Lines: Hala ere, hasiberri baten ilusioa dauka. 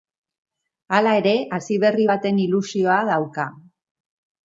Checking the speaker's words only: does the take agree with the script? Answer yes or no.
yes